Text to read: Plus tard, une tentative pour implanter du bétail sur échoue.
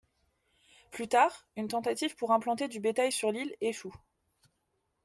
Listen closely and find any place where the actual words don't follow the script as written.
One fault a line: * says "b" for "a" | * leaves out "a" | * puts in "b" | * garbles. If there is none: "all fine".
* puts in "l'île"